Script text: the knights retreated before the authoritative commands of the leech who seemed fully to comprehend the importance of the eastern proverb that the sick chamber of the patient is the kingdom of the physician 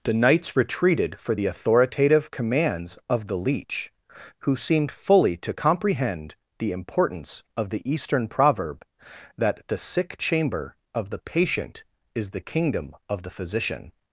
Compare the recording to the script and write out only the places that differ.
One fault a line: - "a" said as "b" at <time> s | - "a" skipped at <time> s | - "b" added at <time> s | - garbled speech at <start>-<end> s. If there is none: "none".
- "before" said as "for" at 1.2 s